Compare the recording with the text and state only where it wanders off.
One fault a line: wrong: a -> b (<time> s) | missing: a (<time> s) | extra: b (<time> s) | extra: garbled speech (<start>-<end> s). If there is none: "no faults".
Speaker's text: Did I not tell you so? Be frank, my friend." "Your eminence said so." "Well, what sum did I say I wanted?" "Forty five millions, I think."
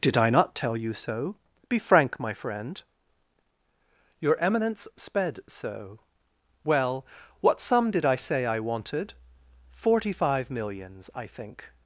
wrong: said -> sped (5.0 s)